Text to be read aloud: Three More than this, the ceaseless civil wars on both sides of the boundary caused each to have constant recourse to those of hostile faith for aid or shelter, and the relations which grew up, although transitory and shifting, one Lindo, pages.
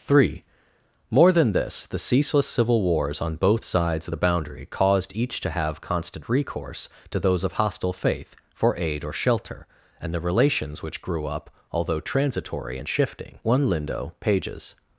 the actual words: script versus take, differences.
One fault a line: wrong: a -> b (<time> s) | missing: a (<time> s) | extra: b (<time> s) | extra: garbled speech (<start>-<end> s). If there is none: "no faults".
no faults